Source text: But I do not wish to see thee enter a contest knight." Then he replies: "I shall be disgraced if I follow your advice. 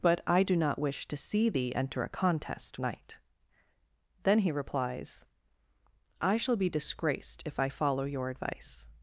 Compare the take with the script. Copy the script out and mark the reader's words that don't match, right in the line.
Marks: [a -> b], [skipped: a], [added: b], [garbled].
But I do not wish to see thee enter a contest knight." Then he replies: "I shall be disgraced if I follow your advice.